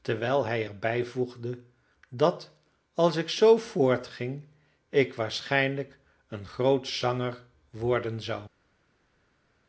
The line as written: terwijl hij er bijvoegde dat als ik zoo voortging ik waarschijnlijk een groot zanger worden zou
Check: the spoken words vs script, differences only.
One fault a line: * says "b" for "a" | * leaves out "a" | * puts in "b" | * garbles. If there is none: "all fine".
all fine